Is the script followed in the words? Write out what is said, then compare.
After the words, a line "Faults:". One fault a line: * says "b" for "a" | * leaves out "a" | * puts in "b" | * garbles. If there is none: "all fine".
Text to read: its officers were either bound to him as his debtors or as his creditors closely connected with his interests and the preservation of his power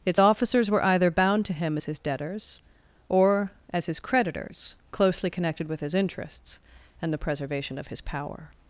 its officers were either bound to him as his debtors or as his creditors closely connected with his interests and the preservation of his power
Faults:
all fine